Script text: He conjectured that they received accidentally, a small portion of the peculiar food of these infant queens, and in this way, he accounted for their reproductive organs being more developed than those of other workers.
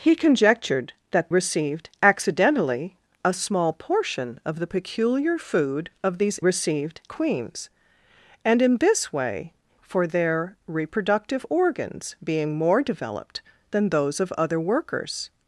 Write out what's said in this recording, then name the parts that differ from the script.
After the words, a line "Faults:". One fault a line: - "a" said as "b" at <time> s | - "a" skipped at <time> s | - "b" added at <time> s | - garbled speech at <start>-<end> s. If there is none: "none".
He conjectured that received accidentally, a small portion of the peculiar food of these received queens, and in this way, for their reproductive organs being more developed than those of other workers.
Faults:
- "they" skipped at 1.3 s
- "infant" said as "received" at 6.4 s
- "he accounted" skipped at 9.5 s